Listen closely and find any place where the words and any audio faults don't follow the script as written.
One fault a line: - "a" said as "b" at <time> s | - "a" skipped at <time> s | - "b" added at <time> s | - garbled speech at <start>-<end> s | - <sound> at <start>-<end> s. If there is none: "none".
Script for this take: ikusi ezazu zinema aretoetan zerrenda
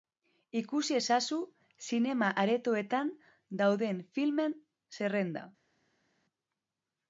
- "dauden filmen" added at 3.6 s